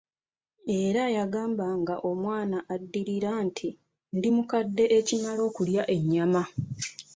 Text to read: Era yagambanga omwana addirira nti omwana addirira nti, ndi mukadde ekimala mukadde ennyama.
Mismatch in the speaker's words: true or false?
true